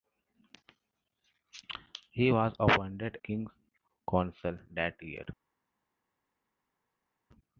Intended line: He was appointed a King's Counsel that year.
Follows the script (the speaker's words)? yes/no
no